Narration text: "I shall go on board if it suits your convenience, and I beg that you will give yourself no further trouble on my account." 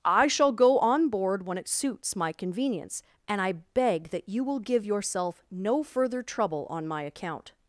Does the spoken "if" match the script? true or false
false